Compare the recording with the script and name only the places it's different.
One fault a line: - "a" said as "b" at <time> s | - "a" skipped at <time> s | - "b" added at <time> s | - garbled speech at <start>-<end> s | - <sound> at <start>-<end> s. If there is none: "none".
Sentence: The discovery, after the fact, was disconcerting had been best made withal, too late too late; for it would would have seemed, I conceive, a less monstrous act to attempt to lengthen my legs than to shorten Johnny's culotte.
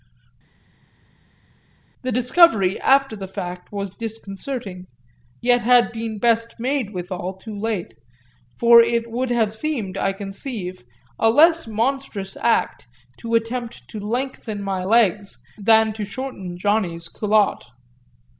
- "yet" added at 5.4 s
- "too late" skipped at 7.9 s
- "would" skipped at 9.3 s